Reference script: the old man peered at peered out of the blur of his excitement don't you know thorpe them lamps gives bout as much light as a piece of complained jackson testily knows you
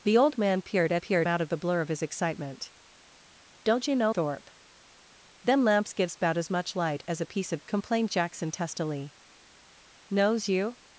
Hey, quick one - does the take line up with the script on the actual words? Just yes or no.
yes